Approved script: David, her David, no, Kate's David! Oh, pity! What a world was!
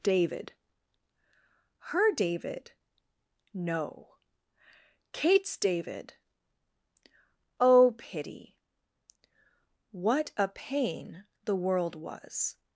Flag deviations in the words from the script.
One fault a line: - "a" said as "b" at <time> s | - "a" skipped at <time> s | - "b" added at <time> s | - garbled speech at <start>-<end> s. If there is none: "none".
- "pain the" added at 10.5 s